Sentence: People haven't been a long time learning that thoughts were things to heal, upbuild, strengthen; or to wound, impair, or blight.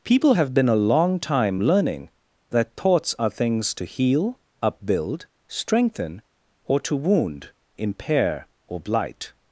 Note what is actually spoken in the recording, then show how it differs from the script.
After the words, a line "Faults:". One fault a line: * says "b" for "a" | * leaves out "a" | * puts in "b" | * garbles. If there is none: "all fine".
People have been a long time learning that thoughts are things to heal, upbuild, strengthen; or to wound, impair, or blight.
Faults:
* says "have" for "haven't"
* says "are" for "were"